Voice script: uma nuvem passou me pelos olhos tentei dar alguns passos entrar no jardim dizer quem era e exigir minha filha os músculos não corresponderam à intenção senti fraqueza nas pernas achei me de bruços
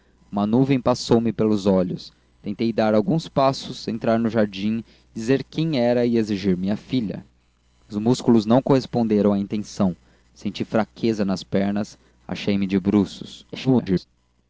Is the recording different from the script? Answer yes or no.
yes